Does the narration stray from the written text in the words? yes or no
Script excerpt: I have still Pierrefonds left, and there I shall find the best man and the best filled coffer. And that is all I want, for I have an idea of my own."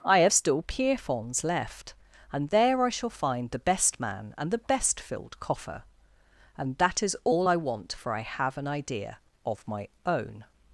no